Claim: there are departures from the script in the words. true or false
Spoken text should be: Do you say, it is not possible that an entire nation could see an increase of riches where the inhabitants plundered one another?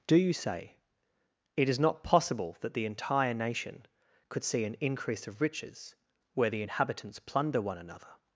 true